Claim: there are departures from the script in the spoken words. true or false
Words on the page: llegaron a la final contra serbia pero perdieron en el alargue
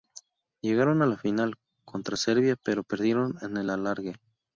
false